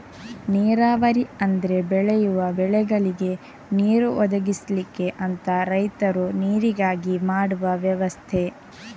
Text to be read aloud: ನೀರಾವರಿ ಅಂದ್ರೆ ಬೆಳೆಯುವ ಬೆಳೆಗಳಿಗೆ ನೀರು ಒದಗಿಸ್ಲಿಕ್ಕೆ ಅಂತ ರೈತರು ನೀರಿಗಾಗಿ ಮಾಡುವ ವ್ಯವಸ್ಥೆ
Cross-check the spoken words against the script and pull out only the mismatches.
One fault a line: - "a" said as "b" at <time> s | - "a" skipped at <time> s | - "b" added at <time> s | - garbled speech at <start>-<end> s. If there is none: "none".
none